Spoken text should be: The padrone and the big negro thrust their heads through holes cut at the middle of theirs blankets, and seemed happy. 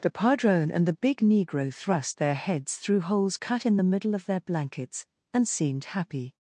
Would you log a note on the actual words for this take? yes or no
yes